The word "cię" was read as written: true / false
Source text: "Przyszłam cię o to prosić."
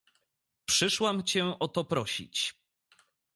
true